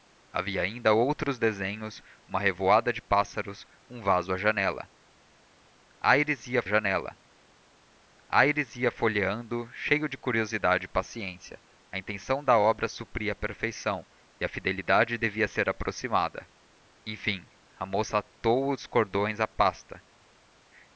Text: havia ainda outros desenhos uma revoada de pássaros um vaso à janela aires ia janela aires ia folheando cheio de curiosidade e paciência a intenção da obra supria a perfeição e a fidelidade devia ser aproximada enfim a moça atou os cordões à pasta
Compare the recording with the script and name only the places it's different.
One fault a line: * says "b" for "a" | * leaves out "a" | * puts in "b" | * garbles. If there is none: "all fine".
all fine